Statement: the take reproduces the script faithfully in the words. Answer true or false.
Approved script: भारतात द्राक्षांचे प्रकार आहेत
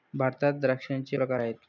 true